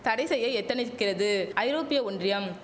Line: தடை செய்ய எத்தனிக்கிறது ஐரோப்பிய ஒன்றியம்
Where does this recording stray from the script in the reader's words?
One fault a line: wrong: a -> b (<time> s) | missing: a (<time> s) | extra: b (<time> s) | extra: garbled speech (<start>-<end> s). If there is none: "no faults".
no faults